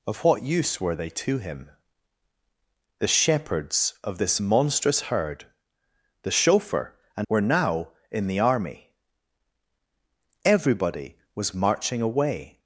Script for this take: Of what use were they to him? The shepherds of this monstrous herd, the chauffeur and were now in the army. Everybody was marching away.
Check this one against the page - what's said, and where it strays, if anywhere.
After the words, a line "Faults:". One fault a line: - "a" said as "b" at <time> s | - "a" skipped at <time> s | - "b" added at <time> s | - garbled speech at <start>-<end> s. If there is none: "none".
Of what use were they to him? The shepherds of this monstrous herd, the chauffeur and were now in the army. Everybody was marching away.
Faults:
none